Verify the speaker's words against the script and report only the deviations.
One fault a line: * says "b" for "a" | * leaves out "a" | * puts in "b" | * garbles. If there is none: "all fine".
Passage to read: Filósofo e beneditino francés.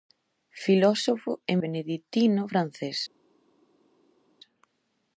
all fine